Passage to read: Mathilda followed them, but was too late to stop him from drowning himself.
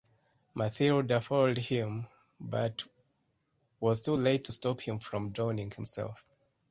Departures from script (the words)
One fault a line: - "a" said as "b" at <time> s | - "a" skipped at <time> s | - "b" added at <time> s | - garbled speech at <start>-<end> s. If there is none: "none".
- "them" said as "him" at 1.6 s